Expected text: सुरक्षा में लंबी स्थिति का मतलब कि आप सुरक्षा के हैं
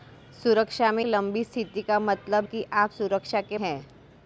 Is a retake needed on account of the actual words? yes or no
no